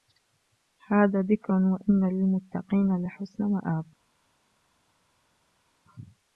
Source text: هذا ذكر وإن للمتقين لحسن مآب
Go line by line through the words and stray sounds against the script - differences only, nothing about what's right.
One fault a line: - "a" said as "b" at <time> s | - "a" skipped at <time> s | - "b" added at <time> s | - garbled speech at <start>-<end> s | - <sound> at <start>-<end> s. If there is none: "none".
none